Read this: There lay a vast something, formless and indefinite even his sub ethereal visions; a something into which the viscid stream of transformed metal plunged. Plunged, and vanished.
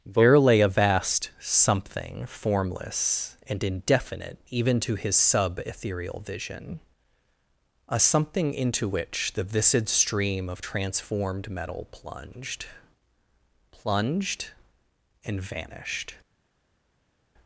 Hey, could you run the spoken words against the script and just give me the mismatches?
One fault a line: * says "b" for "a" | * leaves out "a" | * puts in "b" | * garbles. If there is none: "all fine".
* puts in "to"
* says "vision" for "visions"